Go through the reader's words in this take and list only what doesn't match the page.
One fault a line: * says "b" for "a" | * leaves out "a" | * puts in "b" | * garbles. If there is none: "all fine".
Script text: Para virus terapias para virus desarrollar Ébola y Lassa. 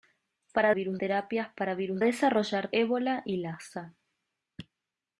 all fine